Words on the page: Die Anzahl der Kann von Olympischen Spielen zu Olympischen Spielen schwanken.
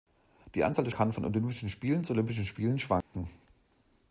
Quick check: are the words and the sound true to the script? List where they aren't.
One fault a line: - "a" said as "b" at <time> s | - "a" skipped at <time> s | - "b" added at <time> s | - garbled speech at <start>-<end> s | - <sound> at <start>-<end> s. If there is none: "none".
- dropout at 3.0-3.1 s